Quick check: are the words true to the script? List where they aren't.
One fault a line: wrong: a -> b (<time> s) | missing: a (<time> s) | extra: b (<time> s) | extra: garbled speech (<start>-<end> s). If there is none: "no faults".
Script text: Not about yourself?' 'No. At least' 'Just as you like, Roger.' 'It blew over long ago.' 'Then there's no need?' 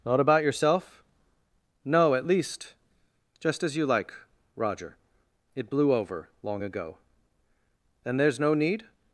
no faults